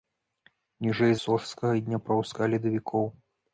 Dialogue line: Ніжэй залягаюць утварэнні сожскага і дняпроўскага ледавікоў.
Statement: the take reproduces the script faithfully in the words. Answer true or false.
false